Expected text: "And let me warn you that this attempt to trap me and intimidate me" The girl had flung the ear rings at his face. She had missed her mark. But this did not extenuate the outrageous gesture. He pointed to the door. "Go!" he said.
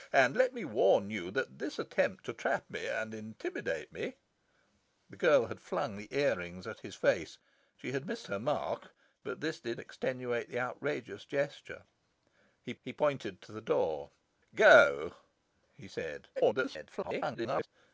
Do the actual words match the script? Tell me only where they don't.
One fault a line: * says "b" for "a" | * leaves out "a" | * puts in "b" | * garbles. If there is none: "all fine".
* leaves out "not"
* puts in "he"
* garbles